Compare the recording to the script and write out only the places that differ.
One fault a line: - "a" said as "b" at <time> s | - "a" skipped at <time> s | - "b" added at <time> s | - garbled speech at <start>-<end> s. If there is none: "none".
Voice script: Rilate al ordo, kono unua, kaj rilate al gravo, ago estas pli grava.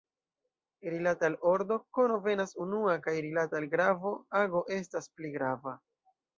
- "venas" added at 2.3 s